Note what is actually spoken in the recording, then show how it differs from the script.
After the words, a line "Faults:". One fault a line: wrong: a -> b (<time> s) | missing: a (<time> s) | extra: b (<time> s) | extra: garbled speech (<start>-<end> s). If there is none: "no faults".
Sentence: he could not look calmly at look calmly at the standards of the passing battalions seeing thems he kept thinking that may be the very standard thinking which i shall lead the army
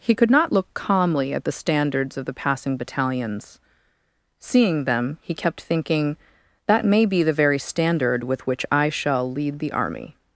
he could not look calmly at the standards of the passing battalions seeing them he kept thinking that may be the very standard with which i shall lead the army
Faults:
missing: look calmly at (1.4 s)
wrong: thems -> them (4.8 s)
wrong: thinking -> with (8.2 s)